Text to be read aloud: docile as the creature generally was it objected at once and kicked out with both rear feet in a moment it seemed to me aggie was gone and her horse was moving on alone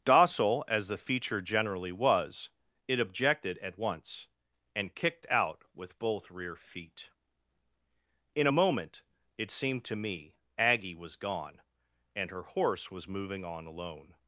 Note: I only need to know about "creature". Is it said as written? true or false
false